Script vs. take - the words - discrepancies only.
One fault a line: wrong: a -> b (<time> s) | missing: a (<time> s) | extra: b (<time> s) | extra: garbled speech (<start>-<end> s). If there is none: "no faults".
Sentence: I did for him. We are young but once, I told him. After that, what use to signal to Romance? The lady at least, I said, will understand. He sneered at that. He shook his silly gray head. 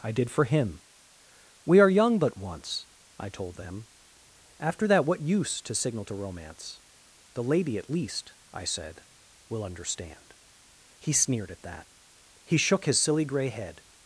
wrong: him -> them (3.5 s)